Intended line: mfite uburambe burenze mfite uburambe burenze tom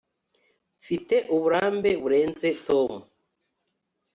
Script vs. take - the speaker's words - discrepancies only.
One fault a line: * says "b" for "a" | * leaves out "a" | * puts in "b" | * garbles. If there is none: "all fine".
* leaves out "mfite uburambe burenze"